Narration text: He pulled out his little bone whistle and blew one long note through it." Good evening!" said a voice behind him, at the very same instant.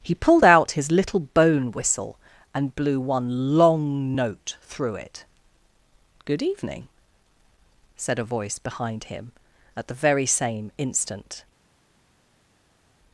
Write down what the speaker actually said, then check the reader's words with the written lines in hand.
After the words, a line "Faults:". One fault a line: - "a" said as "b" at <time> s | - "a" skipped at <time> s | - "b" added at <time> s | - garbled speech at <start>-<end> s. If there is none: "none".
He pulled out his little bone whistle and blew one long note through it." Good evening!" said a voice behind him, at the very same instant.
Faults:
none